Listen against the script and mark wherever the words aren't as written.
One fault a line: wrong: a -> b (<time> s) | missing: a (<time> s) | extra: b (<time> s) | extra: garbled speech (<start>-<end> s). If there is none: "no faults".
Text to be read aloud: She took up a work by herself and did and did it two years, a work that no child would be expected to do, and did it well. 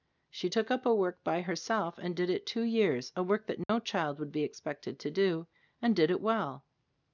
missing: and did (2.3 s)